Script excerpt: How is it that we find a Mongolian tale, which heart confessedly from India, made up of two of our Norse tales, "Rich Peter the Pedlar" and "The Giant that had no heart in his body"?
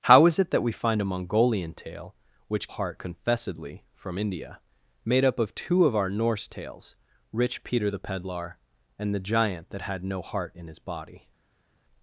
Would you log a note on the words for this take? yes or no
no